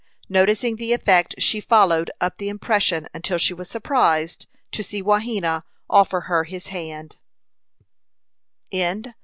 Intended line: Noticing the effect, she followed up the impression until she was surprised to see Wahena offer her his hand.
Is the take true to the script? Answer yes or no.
yes